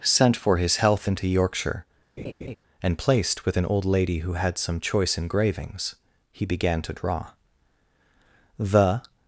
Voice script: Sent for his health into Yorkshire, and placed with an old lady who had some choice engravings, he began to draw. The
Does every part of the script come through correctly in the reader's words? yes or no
yes